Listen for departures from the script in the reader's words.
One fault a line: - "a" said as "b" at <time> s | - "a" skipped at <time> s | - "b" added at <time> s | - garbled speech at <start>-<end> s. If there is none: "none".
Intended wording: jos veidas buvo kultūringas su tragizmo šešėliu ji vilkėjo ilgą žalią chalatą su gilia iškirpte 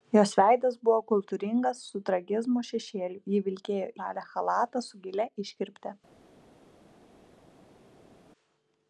- "ilgą" skipped at 3.9 s